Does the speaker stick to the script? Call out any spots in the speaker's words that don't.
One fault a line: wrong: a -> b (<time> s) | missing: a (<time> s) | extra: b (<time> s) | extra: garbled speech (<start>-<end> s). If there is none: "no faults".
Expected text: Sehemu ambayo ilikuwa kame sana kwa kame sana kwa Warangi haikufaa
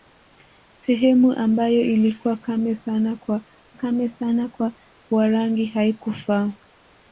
no faults